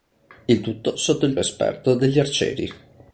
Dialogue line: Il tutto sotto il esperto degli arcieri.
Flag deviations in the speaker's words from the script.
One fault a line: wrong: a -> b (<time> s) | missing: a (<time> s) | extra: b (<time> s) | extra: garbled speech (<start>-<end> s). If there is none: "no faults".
no faults